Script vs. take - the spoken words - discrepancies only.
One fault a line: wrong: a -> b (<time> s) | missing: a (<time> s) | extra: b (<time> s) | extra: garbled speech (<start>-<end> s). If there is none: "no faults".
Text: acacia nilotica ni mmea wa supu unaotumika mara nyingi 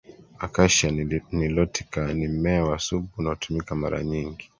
no faults